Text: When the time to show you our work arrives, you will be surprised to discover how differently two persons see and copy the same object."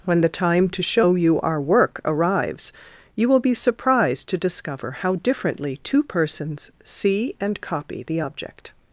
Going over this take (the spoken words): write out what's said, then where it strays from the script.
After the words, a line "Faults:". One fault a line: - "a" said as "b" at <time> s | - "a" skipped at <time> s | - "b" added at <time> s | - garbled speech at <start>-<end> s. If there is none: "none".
When the time to show you our work arrives, you will be surprised to discover how differently two persons see and copy the object."
Faults:
- "same" skipped at 8.2 s